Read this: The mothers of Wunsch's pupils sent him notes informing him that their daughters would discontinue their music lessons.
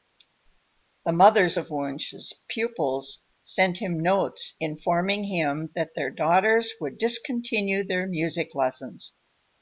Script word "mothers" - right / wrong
right